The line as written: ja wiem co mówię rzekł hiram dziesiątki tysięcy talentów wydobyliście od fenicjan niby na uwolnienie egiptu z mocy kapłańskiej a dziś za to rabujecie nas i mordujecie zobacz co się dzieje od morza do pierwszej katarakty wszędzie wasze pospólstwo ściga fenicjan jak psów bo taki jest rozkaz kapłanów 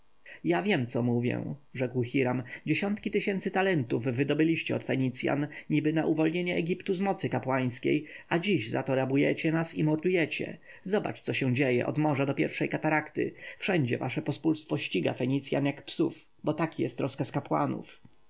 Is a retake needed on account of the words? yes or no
no